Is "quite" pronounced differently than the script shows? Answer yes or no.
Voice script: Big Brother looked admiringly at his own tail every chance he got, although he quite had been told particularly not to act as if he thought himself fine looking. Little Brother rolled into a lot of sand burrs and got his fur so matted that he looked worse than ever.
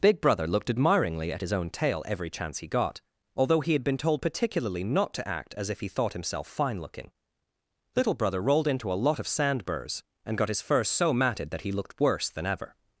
yes